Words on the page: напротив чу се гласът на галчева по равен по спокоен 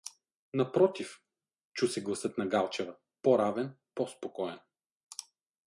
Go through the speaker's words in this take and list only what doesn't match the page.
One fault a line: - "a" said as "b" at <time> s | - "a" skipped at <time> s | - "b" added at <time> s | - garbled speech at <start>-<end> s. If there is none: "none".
none